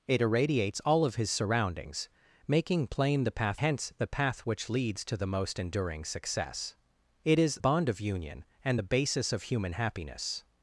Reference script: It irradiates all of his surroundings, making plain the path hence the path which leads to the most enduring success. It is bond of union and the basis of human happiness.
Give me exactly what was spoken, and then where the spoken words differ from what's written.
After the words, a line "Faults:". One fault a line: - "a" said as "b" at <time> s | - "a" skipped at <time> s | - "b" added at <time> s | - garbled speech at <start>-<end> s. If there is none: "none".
It irradiates all of his surroundings, making plain the path hence the path which leads to the most enduring success. It is bond of union and the basis of human happiness.
Faults:
none